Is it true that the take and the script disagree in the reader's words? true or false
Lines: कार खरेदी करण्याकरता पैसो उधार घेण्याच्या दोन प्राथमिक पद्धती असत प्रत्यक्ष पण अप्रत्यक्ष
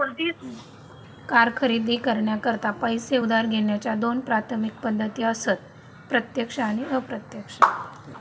true